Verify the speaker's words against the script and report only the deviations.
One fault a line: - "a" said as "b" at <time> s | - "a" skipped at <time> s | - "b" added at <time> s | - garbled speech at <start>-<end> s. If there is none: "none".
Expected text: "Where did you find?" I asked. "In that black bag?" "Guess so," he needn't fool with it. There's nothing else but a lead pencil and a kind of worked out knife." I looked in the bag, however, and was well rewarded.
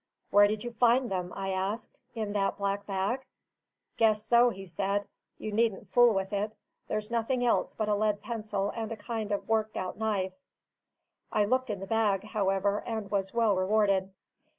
- "them" added at 1.1 s
- "said You" added at 4.7 s